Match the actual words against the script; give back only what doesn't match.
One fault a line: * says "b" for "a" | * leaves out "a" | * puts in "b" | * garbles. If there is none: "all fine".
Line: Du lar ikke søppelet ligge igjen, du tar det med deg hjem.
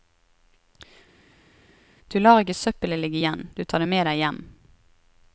all fine